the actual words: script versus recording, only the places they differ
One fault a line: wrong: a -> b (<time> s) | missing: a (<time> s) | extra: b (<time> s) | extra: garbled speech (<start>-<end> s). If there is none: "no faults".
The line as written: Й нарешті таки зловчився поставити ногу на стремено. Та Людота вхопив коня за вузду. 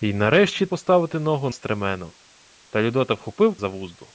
missing: таки зловчився (0.7 s)
missing: на (1.5 s)
missing: коня (3.6 s)